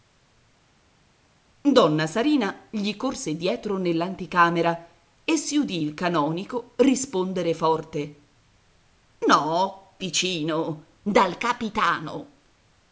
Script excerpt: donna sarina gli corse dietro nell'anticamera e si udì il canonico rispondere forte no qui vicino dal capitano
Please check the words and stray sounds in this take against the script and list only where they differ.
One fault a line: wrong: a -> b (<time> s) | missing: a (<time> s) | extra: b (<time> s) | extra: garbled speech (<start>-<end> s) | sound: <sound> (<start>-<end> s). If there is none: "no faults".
missing: qui (10.0 s)